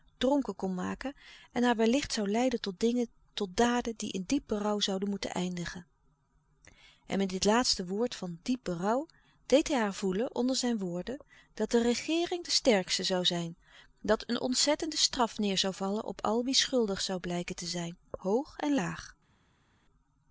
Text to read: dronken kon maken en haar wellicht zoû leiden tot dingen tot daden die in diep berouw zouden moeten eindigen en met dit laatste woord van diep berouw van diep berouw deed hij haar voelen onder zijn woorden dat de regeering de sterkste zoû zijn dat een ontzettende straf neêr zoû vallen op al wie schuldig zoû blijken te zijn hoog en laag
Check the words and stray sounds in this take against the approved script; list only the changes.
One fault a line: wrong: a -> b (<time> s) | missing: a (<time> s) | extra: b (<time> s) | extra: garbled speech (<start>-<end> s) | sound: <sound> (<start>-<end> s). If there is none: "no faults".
missing: van diep berouw (9.1 s)